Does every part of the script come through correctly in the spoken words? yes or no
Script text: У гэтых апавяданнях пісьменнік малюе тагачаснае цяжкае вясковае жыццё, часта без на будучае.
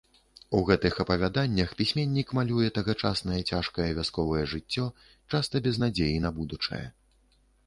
no